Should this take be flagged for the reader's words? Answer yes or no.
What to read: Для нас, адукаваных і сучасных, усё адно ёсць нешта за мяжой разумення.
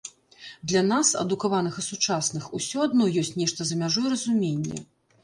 no